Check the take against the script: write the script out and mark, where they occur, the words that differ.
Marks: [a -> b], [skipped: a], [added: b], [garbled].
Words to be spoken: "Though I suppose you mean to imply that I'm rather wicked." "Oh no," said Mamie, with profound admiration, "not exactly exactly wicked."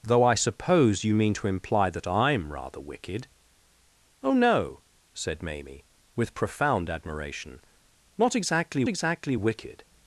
"Though I suppose you mean to imply that I'm rather wicked." "Oh no," said Mamie, with profound admiration, "not exactly exactly wicked."